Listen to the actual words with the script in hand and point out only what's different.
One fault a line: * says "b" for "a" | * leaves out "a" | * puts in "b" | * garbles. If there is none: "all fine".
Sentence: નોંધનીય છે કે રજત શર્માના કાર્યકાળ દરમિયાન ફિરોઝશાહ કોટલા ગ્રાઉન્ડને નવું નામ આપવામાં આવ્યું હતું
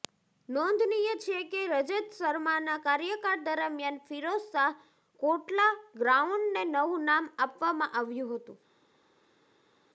all fine